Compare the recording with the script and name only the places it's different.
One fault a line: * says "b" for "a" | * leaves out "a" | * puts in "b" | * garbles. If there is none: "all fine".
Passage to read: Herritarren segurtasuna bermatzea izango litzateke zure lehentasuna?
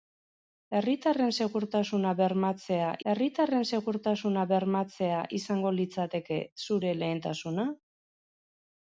* puts in "herritarren segurtasuna bermatzea"